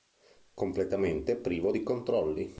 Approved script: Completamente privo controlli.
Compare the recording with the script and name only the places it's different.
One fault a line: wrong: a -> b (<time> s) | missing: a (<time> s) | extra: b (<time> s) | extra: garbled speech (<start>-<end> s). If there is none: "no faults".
extra: di (1.7 s)